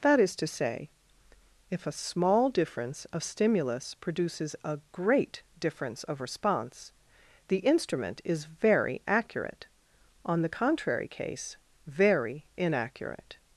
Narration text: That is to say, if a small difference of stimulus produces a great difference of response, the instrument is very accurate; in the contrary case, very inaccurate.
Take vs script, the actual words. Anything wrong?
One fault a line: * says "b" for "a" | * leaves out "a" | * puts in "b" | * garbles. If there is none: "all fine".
* says "on" for "in"